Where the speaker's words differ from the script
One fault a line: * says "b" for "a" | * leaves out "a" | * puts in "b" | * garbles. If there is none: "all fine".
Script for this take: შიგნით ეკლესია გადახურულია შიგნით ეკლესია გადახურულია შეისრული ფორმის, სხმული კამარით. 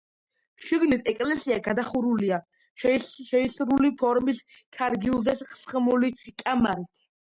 * leaves out "შიგნით ეკლესია გადახურულია"
* puts in "ქარგილზე"